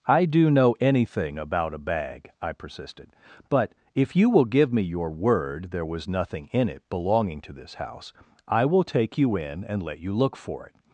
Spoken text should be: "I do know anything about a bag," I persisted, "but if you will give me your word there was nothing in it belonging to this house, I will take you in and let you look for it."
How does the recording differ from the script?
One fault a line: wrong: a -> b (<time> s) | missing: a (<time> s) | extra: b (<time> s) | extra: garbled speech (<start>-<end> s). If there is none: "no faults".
no faults